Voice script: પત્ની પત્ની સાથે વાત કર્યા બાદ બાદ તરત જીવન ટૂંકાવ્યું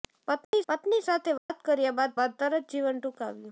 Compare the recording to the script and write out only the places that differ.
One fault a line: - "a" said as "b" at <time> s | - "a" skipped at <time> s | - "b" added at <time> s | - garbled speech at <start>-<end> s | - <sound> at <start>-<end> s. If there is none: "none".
- dropout at 0.4-0.5 s
- dropout at 1.4-1.5 s